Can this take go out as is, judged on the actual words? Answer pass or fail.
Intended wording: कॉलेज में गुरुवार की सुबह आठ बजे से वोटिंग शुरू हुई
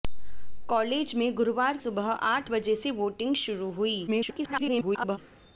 fail